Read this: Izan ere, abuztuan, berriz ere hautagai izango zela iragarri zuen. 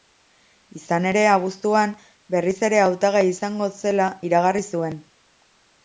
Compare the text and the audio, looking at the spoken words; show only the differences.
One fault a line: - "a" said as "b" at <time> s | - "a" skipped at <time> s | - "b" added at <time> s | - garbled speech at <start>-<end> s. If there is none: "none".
none